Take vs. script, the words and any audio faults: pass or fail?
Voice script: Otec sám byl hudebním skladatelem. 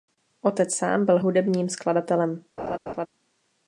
fail